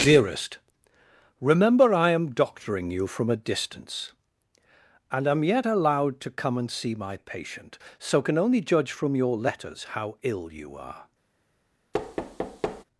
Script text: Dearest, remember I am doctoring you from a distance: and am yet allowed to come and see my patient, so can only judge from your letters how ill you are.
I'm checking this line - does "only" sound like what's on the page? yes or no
yes